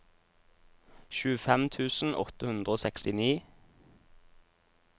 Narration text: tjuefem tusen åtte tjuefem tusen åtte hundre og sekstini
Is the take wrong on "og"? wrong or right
right